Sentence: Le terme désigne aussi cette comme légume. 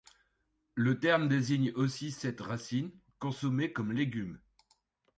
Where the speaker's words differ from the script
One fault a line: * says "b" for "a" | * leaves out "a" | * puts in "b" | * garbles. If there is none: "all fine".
* puts in "racine consommée"